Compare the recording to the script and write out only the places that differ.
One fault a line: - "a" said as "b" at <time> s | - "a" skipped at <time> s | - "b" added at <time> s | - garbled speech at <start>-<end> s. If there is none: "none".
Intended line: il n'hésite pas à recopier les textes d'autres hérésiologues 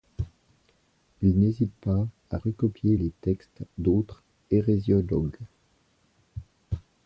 none